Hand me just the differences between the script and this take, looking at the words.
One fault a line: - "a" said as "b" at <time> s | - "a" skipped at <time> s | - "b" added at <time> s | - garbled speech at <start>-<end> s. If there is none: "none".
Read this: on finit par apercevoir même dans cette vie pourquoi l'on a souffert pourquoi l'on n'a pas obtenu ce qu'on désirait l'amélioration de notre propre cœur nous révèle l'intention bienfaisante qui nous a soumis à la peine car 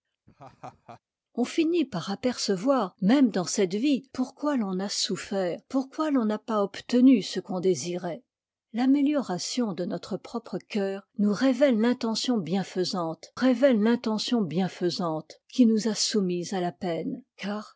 - "révèle l'intention bienfaisante" added at 13.3 s